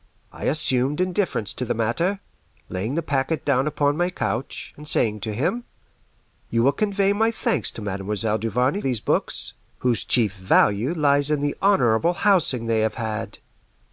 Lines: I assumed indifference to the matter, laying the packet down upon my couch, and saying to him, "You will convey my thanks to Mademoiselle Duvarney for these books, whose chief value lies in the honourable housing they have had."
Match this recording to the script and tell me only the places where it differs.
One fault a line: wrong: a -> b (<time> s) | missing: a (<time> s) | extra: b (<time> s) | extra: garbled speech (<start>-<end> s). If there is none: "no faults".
missing: for (8.8 s)